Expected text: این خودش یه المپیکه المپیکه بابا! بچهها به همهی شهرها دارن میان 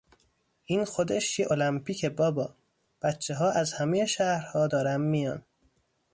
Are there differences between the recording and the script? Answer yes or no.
yes